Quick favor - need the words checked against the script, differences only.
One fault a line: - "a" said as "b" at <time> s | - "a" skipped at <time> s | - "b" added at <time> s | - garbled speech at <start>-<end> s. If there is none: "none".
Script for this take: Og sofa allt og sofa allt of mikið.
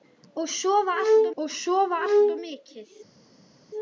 none